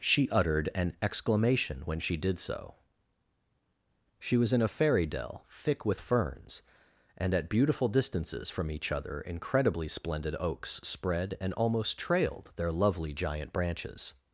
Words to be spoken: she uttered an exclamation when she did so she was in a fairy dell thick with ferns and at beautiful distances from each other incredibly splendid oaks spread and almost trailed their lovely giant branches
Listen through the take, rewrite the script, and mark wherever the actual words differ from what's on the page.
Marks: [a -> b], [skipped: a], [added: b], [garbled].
she uttered an exclamation when she did so she was in a fairy dell thick with ferns and at beautiful distances from each other incredibly splendid oaks spread and almost trailed their lovely giant branches